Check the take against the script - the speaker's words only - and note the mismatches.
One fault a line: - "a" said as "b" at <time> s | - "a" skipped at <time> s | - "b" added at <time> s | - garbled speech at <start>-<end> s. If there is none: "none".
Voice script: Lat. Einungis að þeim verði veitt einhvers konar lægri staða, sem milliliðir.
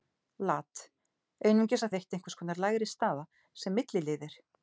- "þeim verði" skipped at 1.9 s